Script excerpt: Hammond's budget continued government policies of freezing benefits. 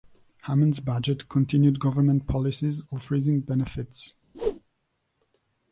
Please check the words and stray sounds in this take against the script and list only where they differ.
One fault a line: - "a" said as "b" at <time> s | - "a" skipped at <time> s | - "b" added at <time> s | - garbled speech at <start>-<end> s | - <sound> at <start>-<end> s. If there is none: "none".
- whoosh at 4.3-4.6 s